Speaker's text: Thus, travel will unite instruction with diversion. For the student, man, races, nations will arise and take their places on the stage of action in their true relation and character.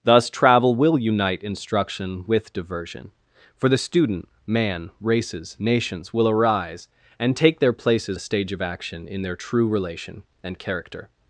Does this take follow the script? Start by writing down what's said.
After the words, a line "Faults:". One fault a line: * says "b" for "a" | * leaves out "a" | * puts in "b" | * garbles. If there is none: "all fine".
Thus, travel will unite instruction with diversion. For the student, man, races, nations will arise and take their places the stage of action in their true relation and character.
Faults:
* leaves out "on"